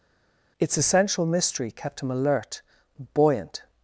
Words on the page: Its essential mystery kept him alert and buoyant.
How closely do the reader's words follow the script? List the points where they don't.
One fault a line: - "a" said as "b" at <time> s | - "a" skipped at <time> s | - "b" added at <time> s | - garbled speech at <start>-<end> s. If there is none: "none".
- "and" skipped at 2.6 s